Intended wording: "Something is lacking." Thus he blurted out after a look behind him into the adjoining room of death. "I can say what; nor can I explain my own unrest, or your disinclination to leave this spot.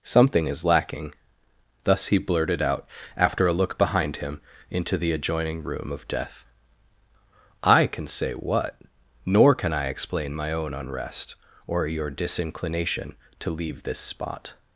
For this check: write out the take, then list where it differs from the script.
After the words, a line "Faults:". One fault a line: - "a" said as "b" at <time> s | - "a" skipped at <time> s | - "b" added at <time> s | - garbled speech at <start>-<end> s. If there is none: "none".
"Something is lacking." Thus he blurted out after a look behind him into the adjoining room of death. "I can say what; nor can I explain my own unrest, or your disinclination to leave this spot.
Faults:
none